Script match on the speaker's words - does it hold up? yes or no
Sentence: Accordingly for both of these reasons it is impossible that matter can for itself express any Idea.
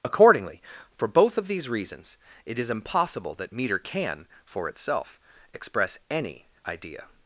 no